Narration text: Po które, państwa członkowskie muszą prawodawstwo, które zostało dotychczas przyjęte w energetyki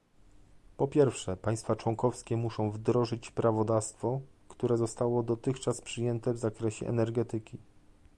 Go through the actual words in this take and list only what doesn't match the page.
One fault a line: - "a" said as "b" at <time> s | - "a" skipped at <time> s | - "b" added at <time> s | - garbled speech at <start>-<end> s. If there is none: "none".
- "które" said as "pierwsze" at 0.9 s
- "wdrożyć" added at 2.7 s
- "zakresie" added at 6.4 s